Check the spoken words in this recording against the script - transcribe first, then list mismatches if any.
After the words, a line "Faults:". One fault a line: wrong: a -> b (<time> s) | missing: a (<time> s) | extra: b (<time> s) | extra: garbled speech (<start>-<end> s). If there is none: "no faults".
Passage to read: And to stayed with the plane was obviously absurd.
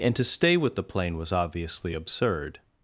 And to stay with the plane was obviously absurd.
Faults:
wrong: stayed -> stay (0.2 s)